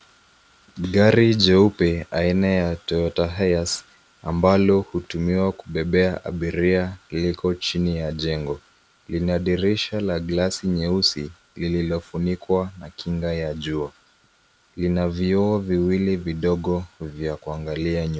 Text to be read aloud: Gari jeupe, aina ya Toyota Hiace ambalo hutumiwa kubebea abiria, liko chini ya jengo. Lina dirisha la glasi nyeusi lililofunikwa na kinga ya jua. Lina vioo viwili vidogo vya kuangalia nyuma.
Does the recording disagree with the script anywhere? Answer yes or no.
no